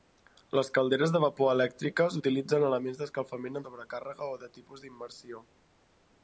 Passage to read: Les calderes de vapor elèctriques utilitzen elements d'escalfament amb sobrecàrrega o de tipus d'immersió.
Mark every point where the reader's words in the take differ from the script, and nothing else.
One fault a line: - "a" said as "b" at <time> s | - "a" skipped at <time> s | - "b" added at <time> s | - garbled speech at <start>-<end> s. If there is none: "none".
- "amb" skipped at 3.6 s